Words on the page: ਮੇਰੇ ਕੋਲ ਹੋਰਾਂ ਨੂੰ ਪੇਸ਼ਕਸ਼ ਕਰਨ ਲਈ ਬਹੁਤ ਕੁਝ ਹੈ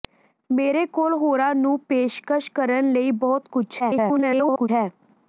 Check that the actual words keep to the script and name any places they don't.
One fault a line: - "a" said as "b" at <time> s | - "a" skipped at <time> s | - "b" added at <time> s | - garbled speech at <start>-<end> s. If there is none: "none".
- garbled speech at 3.8-4.7 s